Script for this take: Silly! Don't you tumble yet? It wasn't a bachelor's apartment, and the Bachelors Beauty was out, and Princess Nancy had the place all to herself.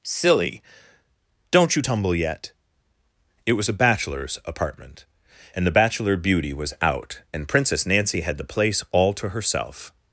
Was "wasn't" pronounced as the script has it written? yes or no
no